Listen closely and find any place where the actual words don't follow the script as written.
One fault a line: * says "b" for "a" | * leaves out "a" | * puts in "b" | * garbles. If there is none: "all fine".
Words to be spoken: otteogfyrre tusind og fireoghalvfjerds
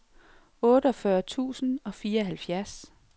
all fine